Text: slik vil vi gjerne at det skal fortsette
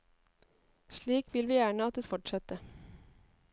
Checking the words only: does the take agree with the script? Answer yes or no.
no